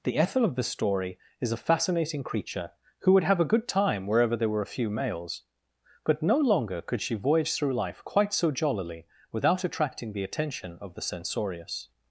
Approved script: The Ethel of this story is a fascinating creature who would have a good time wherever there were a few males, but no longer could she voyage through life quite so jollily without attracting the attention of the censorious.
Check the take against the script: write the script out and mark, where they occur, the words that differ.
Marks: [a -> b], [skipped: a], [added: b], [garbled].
The Ethel of [this -> the] story is a fascinating creature who would have a good time wherever there were a few males, but no longer could she voyage through life quite so jollily without attracting the attention of the censorious.